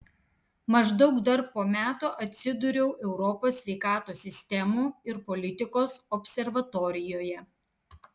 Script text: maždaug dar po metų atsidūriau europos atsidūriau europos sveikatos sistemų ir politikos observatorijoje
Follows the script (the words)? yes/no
no